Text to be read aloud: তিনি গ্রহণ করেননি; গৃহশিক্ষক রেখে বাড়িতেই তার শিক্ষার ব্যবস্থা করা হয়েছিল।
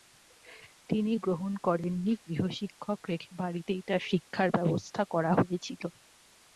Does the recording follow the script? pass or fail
pass